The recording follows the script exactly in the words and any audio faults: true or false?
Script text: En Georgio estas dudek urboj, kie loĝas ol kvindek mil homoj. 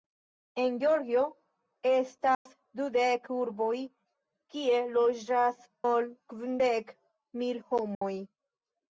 false